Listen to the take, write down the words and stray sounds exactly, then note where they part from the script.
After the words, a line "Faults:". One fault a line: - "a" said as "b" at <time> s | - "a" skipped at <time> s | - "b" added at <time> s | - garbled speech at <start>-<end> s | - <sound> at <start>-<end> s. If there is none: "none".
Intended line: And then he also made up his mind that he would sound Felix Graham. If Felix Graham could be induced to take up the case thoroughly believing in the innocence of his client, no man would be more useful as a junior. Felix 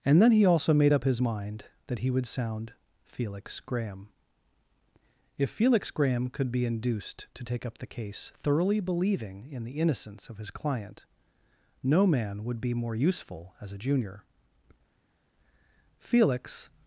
And then he also made up his mind that he would sound Felix Graham. If Felix Graham could be induced to take up the case thoroughly believing in the innocence of his client, no man would be more useful as a junior. Felix
Faults:
none